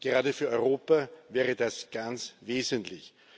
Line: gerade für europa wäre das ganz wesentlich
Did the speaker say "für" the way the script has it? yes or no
yes